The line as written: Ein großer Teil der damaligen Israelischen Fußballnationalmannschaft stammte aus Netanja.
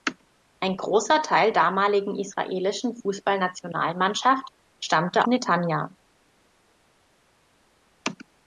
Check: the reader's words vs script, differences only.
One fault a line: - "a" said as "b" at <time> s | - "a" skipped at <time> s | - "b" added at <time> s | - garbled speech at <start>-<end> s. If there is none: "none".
- "der" skipped at 1.5 s
- "aus" skipped at 5.3 s